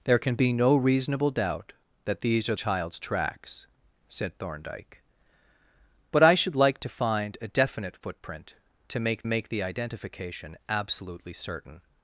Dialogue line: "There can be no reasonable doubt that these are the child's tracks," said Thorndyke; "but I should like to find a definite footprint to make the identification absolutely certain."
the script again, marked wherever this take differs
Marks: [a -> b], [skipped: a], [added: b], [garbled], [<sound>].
"There can be no reasonable doubt that these are [skipped: the] child's tracks," said Thorndyke; "but I should like to find a definite footprint to make [added: make] the identification absolutely certain."